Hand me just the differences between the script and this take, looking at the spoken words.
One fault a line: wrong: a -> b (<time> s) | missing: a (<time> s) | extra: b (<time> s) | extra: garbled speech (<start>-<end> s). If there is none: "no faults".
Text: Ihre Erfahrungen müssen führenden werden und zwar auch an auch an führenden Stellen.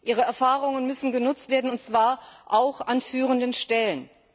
wrong: führenden -> genutzt (1.1 s)
missing: auch an (3.0 s)